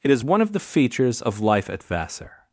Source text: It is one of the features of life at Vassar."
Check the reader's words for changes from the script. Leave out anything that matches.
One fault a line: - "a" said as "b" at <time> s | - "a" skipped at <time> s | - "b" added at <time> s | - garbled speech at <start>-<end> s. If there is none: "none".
none